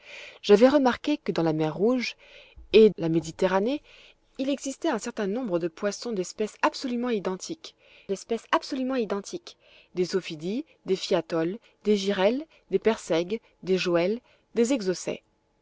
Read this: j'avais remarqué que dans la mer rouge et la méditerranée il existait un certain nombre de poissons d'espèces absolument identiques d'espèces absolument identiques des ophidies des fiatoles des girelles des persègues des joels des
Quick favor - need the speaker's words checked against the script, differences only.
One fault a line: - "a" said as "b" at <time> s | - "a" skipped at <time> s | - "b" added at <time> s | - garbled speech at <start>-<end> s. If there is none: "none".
none